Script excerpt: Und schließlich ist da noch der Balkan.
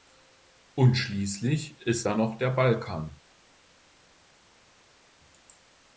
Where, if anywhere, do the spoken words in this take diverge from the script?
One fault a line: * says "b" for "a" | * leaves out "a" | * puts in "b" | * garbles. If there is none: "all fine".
all fine